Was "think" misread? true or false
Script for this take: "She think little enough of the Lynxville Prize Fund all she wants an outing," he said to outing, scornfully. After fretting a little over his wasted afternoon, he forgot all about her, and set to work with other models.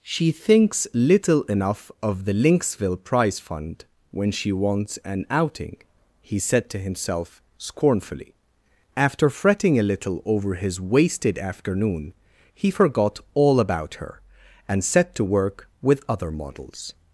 true